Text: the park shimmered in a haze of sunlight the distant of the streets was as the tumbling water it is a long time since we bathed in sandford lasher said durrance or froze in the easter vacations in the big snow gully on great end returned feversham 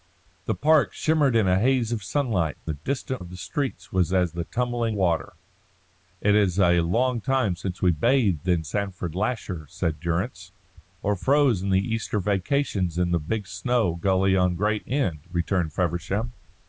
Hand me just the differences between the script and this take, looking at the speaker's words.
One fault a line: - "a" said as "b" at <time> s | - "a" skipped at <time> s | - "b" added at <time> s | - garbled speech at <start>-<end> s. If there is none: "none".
none